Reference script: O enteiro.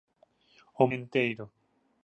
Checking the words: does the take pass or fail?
pass